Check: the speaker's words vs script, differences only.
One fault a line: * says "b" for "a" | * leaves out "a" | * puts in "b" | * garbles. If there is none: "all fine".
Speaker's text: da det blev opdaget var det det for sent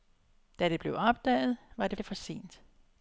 all fine